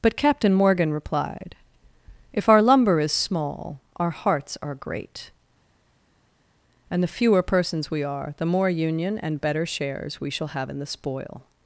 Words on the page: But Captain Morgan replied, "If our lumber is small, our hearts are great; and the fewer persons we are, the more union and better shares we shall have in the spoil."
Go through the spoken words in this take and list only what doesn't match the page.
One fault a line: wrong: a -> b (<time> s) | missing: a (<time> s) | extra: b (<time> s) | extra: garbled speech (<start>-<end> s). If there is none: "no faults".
no faults